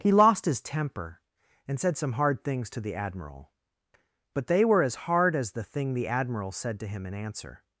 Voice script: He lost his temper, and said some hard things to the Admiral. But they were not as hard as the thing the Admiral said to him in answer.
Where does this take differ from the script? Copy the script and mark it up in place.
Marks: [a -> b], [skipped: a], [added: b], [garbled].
He lost his temper, and said some hard things to the Admiral. But they were [skipped: not] as hard as the thing the Admiral said to him in answer.